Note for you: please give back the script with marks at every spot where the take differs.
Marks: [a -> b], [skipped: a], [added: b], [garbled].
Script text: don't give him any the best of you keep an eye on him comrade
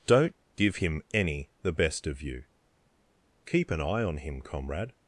don't give him any the best of you keep an eye on him comrade